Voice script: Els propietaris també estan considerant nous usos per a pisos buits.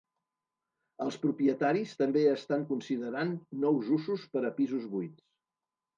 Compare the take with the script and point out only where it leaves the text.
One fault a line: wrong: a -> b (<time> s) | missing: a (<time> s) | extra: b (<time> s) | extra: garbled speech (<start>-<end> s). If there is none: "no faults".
no faults